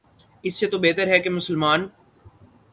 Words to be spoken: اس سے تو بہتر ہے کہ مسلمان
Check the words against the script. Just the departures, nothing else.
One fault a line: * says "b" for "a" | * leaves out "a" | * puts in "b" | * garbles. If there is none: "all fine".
all fine